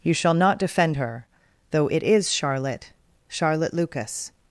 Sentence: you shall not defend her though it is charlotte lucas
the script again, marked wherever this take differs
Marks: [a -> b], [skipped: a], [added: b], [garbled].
you shall not defend her though it is charlotte [added: charlotte] lucas